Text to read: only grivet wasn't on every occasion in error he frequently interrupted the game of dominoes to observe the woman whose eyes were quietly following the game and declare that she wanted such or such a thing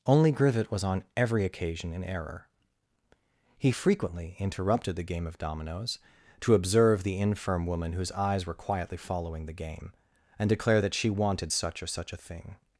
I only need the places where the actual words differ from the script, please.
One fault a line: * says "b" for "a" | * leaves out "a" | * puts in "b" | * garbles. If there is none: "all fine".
* says "was" for "wasn't"
* puts in "infirm"